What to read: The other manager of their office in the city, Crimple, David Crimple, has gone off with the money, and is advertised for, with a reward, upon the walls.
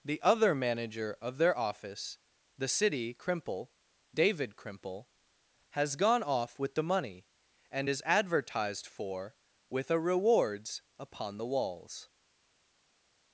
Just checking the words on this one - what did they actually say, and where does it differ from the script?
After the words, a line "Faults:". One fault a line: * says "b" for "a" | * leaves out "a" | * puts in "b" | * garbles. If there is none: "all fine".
The other manager of their office the city, Crimple, David Crimple, has gone off with the money, and is advertised for, with a rewards, upon the walls.
Faults:
* leaves out "in"
* says "rewards" for "reward"